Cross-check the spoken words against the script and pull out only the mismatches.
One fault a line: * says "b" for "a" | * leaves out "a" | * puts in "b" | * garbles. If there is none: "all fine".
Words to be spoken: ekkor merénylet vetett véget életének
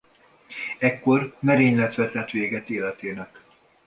all fine